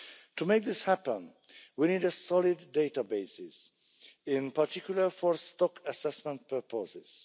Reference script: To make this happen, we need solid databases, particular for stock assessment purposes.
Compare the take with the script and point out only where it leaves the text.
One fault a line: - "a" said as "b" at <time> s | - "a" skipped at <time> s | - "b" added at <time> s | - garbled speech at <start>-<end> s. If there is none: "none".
- "in" added at 4.2 s